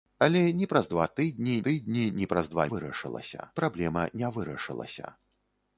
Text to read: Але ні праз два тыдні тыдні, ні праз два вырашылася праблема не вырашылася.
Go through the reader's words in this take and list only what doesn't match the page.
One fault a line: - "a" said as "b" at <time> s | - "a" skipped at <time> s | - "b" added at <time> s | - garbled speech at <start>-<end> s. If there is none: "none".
none